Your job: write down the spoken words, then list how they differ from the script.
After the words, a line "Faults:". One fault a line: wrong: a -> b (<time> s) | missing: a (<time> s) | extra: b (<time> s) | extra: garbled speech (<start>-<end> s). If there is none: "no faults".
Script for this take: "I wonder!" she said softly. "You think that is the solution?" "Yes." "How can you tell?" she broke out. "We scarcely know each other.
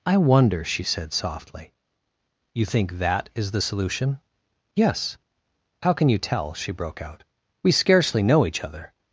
"I wonder!" she said softly. "You think that is the solution?" "Yes." "How can you tell?" she broke out. "We scarcely know each other.
Faults:
no faults